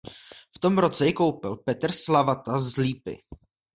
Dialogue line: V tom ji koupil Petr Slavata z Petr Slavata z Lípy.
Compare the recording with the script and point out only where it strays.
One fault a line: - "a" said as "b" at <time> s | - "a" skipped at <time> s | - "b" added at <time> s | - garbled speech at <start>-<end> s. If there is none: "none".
- "roce" added at 0.8 s
- "Petr Slavata z" skipped at 2.8 s